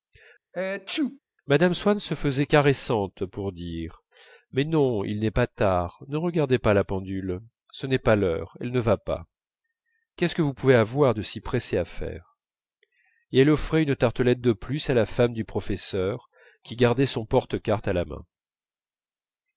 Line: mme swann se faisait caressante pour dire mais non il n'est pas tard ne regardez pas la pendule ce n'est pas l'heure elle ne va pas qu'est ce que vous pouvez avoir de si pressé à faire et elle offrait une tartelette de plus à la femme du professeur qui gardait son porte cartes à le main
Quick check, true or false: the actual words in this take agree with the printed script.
false